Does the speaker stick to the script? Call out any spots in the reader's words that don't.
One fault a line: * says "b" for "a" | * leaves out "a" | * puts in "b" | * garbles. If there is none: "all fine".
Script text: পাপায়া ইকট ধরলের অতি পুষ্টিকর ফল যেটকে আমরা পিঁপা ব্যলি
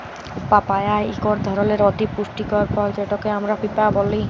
all fine